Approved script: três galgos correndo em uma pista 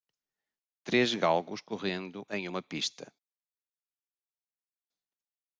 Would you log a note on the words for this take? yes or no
no